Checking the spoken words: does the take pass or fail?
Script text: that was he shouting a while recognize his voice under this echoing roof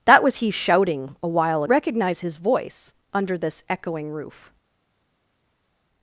pass